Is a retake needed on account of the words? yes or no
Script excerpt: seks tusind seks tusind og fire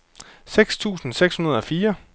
yes